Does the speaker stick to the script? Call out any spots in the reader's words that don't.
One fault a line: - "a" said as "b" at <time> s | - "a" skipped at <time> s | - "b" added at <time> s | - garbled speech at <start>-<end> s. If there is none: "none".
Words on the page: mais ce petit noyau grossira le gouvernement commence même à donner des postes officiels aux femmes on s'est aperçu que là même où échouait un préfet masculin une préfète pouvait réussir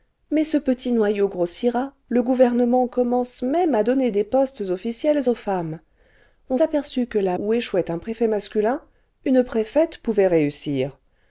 - "s'est" skipped at 6.6 s
- "même" skipped at 7.4 s